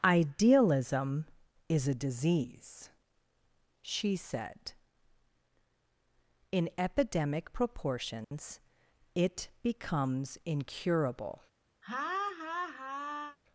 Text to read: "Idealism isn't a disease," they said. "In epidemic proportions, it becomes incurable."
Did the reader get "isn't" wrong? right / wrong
wrong